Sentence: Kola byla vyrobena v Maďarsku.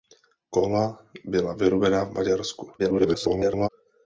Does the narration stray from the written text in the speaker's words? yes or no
yes